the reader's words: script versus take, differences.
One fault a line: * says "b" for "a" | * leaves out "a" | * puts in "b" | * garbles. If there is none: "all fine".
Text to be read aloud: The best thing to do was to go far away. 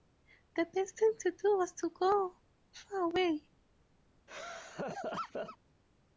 all fine